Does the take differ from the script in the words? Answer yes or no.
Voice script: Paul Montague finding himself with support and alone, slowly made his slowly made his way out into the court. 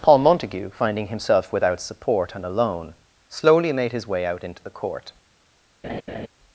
yes